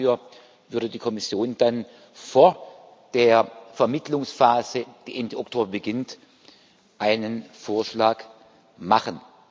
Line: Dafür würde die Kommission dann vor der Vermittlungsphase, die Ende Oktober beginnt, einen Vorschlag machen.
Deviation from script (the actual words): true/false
false